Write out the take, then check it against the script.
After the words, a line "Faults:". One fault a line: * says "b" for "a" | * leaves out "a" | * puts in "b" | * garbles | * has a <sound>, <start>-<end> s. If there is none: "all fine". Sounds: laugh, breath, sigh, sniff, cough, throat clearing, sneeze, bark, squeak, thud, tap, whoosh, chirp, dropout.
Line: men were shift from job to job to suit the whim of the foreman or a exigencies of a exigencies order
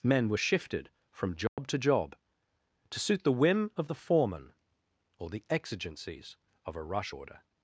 men were shifted from job to job to suit the whim of the foreman or the exigencies of a rush order
Faults:
* says "shifted" for "shift"
* has a dropout, 1.5-1.6 s
* says "the" for "a"
* says "rush" for "exigencies"